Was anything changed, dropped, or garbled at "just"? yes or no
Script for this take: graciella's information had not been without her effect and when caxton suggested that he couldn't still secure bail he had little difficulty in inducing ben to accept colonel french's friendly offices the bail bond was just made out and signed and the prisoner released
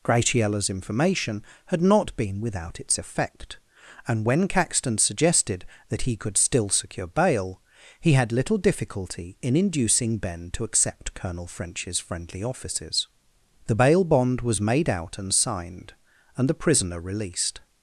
yes